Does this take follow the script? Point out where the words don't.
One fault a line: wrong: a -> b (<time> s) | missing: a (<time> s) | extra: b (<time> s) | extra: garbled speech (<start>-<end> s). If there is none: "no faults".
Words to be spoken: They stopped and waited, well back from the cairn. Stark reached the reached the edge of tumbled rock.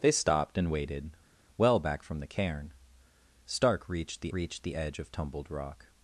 no faults